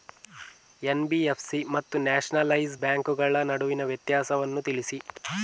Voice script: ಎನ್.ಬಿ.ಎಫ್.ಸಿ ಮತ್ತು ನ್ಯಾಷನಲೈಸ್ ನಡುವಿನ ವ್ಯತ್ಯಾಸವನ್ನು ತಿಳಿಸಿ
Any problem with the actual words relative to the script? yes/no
yes